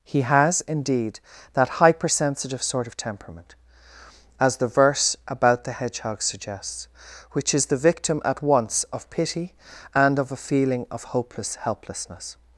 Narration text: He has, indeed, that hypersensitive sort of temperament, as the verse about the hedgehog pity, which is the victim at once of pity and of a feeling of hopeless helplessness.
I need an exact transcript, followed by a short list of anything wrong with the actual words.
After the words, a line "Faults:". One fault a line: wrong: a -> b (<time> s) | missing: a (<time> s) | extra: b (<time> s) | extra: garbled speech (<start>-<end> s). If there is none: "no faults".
He has, indeed, that hypersensitive sort of temperament, as the verse about the hedgehog suggests, which is the victim at once of pity and of a feeling of hopeless helplessness.
Faults:
wrong: pity -> suggests (6.2 s)